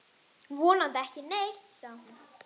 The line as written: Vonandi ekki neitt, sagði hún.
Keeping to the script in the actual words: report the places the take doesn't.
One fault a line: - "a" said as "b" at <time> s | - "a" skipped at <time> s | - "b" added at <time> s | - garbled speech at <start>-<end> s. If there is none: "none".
none